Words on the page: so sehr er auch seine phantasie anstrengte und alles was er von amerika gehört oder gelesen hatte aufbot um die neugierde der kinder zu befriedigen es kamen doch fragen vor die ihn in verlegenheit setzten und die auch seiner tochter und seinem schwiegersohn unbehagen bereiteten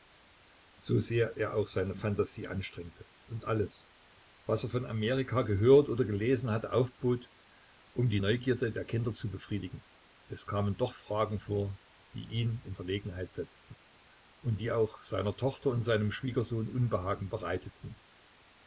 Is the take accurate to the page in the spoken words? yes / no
yes